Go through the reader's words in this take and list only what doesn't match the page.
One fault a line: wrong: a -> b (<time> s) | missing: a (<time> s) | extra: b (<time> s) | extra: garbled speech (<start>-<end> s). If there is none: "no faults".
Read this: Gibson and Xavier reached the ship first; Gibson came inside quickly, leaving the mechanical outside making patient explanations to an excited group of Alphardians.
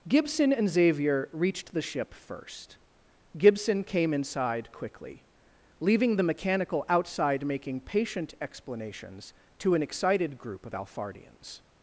no faults